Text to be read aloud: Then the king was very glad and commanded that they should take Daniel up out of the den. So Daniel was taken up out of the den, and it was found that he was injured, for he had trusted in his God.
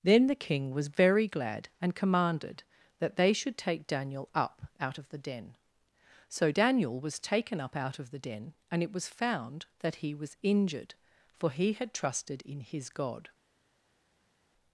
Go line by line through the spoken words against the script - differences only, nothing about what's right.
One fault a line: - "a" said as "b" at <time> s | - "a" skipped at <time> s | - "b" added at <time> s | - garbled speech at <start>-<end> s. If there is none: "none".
none